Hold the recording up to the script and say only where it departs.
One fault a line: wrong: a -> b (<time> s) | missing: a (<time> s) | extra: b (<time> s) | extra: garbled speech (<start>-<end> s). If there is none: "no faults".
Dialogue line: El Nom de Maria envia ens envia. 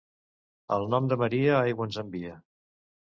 wrong: envia -> aigua (1.6 s)